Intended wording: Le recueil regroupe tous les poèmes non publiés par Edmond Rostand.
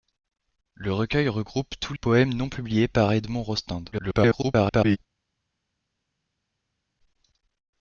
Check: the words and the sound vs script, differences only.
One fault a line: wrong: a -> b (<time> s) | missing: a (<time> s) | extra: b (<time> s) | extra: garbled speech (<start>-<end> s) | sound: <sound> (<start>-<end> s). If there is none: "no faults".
missing: les (1.9 s)
extra: garbled speech (3.9-5.0 s)